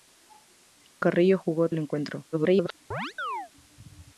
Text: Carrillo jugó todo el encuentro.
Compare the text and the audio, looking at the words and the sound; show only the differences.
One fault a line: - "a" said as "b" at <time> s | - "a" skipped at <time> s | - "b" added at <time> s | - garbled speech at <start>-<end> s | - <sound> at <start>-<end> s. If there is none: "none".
- "todo" skipped at 1.7 s
- garbled speech at 2.3-2.7 s
- chirp at 2.9-3.5 s